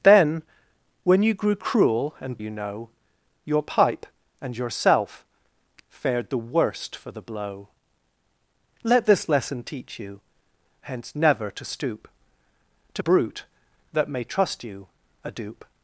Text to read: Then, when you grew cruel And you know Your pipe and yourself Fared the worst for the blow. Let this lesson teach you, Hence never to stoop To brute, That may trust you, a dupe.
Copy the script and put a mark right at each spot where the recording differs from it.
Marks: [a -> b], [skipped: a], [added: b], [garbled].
Then, when you grew cruel And you know Your pipe and yourself Fared the worst for the blow. Let this lesson teach you, Hence never to stoop To brute, That may trust you, a dupe.